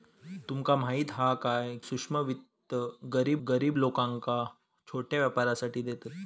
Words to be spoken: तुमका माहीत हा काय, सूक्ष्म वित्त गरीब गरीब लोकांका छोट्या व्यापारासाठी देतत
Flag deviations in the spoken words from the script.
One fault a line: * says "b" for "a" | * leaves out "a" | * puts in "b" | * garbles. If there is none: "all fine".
all fine